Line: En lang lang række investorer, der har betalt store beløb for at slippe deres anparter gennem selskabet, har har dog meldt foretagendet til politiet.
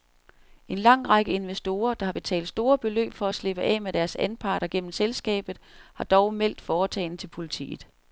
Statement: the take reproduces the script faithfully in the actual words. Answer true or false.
false